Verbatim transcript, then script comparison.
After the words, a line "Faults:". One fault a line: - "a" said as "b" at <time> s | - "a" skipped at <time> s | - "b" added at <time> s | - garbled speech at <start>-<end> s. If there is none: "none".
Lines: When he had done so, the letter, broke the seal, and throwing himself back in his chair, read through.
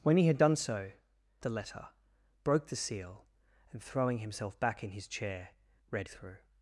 When he had done so, the letter, broke the seal, and throwing himself back in his chair, read through.
Faults:
none